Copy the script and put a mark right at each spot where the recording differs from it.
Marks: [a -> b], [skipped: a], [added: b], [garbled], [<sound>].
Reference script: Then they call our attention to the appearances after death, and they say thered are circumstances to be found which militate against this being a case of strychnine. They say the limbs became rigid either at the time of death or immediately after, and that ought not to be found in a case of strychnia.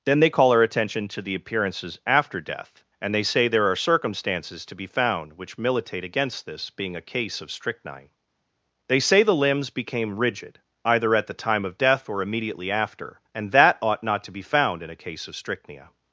Then they call our attention to the appearances after death, and they say [thered -> there] are circumstances to be found which militate against this being a case of strychnine. They say the limbs became rigid either at the time of death or immediately after, and that ought not to be found in a case of strychnia.